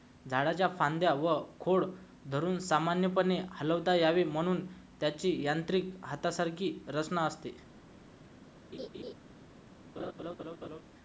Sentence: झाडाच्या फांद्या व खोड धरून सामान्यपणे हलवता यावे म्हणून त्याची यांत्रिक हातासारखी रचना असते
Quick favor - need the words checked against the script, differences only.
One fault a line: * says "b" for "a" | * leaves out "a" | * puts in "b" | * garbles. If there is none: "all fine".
all fine